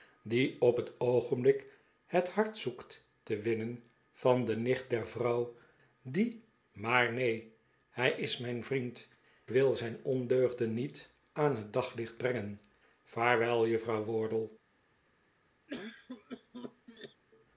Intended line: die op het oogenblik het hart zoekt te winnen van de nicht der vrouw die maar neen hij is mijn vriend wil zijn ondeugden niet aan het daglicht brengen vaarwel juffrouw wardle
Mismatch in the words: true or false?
false